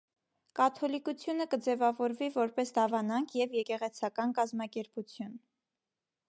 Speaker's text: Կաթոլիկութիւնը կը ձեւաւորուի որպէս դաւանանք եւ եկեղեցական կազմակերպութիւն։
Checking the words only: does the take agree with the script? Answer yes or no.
yes